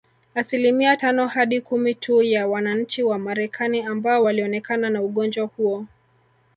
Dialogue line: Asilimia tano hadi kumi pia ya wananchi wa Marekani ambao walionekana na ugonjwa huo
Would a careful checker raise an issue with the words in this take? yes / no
yes